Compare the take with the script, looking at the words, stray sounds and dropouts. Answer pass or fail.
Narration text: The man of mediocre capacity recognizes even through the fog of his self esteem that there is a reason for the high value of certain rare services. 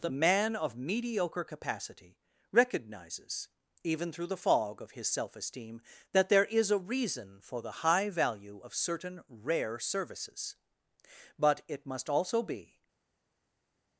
fail